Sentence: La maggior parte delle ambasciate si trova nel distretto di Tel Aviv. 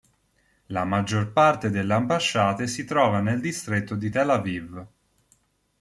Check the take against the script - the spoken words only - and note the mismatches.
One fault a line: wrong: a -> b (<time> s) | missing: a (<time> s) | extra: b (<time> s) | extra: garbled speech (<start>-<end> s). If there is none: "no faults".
no faults